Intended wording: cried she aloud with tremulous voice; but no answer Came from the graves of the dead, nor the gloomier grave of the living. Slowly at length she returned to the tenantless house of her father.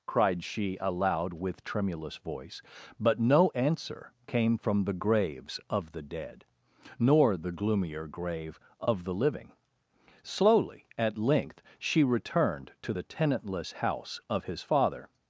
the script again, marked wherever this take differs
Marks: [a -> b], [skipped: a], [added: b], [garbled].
cried she aloud with tremulous voice; but no answer Came from the graves of the dead, nor the gloomier grave of the living. Slowly at length she returned to the tenantless house of [her -> his] father.